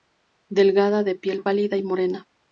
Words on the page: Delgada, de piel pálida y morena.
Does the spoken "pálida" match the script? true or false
true